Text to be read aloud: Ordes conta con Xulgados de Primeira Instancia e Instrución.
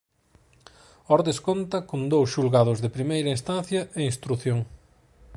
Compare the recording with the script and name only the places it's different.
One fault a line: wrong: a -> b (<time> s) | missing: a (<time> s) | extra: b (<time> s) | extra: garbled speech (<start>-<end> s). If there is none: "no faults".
extra: dous (2.1 s)